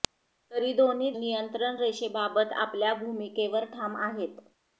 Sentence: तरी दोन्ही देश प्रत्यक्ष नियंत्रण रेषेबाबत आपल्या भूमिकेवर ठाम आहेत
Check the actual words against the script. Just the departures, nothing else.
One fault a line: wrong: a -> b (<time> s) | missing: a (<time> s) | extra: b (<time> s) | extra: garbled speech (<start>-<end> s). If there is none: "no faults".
missing: देश प्रत्यक्ष (1.1 s)